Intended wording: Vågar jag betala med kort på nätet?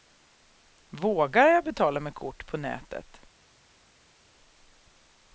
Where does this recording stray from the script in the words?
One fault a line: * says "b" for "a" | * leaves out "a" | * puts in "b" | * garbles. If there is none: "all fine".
all fine